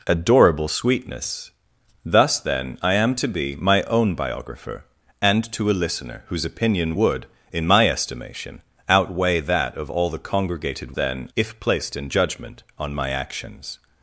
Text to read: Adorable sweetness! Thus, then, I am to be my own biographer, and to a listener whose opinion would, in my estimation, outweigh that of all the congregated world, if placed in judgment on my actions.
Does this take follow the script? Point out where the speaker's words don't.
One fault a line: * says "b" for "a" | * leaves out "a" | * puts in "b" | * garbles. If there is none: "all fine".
* says "then" for "world"